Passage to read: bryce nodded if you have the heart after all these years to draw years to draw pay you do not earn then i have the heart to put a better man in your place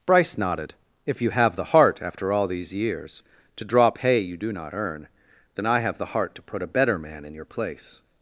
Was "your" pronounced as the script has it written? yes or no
yes